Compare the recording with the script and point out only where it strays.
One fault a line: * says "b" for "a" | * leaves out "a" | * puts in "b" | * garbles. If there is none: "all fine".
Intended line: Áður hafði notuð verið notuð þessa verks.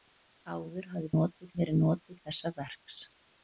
all fine